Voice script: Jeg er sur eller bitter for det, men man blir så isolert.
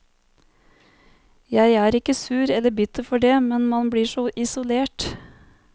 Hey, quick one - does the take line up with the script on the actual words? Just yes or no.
no